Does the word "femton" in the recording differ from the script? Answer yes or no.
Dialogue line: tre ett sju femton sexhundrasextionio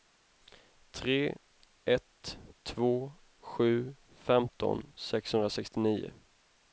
no